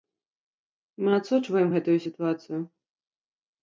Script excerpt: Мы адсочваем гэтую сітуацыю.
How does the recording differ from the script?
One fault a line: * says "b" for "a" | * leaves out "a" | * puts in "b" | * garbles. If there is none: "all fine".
all fine